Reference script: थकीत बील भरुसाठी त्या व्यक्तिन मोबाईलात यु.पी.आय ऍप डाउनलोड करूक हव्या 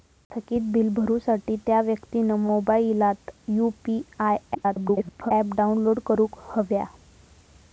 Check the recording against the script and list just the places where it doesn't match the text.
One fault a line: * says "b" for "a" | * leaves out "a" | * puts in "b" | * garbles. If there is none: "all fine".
* garbles